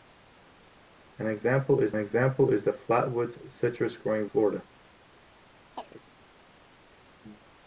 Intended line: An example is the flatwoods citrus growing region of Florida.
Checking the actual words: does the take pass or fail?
fail